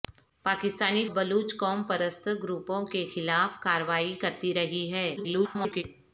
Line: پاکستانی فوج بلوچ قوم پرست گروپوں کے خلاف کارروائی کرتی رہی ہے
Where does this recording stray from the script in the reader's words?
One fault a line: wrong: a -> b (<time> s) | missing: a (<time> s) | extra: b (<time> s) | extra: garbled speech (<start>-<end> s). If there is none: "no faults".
missing: فوج (1.1 s)
extra: garbled speech (5.2-5.8 s)